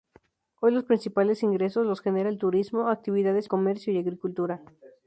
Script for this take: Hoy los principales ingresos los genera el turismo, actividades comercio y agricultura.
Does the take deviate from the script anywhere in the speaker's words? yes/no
no